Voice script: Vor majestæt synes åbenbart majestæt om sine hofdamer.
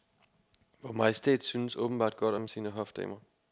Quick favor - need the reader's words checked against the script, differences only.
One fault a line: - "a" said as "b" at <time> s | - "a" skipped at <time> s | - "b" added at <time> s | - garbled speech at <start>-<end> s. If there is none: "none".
- "majestæt" said as "godt" at 2.2 s